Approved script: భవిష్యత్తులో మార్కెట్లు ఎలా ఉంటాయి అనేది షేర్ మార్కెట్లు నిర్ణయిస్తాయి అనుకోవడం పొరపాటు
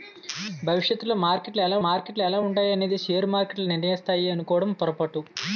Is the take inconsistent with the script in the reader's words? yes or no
yes